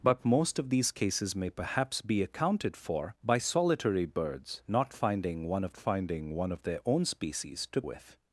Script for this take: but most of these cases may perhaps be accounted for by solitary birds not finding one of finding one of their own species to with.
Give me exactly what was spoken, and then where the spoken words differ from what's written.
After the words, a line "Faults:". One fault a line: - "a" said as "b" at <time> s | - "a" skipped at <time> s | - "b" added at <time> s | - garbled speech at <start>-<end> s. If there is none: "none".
but most of these cases may perhaps be accounted for by solitary birds not finding one of finding one of their own species to with.
Faults:
none